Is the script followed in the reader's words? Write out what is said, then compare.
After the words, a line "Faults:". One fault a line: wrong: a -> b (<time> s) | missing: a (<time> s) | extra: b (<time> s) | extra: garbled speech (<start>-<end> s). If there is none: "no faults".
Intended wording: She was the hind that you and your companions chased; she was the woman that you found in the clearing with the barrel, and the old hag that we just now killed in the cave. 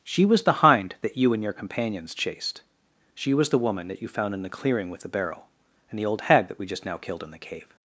She was the hind that you and your companions chased; she was the woman that you found in the clearing with the barrel, and the old hag that we just now killed in the cave.
Faults:
no faults